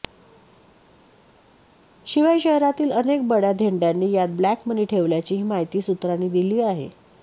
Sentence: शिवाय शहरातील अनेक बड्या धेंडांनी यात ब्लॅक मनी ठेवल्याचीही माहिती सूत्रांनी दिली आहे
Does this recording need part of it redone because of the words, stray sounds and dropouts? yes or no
no